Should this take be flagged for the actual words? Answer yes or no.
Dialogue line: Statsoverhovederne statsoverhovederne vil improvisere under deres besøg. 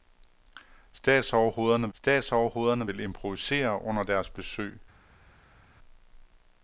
no